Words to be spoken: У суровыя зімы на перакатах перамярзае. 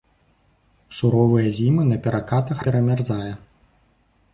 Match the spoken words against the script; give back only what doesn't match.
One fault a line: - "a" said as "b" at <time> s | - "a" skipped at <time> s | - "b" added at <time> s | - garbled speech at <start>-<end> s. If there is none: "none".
none